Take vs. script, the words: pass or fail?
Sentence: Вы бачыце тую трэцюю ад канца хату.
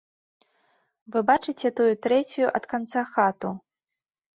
pass